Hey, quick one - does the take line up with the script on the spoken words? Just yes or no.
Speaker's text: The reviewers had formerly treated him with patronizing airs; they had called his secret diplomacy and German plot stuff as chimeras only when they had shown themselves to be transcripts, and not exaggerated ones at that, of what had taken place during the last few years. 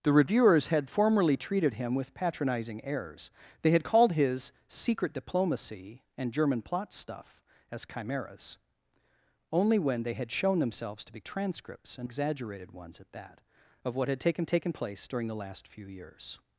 no